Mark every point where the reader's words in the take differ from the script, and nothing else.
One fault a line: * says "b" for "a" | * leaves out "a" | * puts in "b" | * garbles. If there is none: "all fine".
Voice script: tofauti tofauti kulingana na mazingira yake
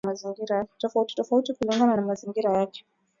all fine